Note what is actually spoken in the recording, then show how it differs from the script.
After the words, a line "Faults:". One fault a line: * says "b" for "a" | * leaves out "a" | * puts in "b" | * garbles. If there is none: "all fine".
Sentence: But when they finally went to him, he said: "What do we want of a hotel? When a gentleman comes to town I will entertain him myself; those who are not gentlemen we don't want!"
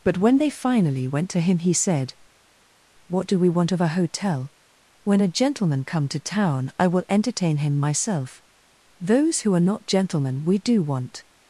But when they finally went to him, he said: "What do we want of a hotel? When a gentleman come to town I will entertain him myself; those who are not gentlemen we do want!"
Faults:
* says "come" for "comes"
* says "do" for "don't"